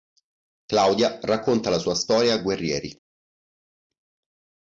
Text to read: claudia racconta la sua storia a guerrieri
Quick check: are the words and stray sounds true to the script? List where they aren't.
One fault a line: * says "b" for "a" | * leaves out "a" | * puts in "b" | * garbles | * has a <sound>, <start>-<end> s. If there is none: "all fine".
all fine